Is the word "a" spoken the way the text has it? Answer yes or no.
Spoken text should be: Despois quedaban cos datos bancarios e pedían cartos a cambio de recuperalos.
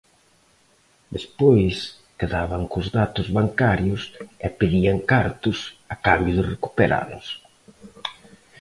yes